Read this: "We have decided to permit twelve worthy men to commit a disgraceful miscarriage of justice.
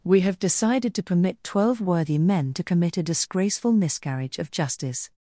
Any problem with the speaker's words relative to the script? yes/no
no